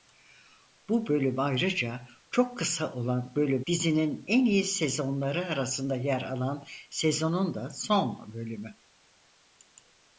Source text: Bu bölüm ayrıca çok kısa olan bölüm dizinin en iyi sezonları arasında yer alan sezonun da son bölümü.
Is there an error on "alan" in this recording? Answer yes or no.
no